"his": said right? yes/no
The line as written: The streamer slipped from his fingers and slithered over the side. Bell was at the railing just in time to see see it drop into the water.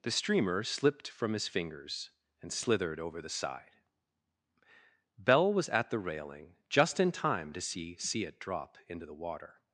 yes